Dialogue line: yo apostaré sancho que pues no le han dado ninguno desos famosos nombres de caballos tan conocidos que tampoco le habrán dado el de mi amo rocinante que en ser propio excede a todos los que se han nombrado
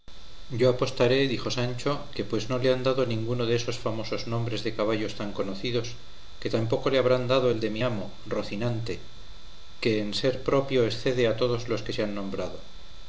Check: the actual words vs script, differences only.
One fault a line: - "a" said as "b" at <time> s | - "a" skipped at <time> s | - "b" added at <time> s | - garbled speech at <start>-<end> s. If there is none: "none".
- "dijo" added at 1.3 s